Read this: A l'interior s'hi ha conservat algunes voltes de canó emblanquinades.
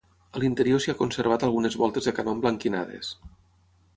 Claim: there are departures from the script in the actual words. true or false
false